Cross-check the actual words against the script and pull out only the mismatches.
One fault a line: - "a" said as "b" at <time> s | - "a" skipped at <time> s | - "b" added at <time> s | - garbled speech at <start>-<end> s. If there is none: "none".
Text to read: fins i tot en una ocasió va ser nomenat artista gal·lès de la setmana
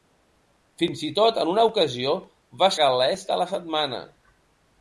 - "ser nomenat artista" skipped at 2.7 s